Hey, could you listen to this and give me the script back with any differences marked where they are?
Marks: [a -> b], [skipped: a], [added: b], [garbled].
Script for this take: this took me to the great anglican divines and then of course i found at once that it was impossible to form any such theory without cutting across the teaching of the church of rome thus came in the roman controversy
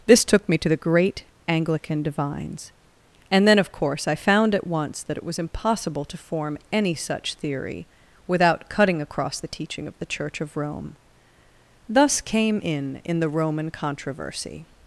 this took me to the great anglican divines and then of course i found at once that it was impossible to form any such theory without cutting across the teaching of the church of rome thus came in [added: in] the roman controversy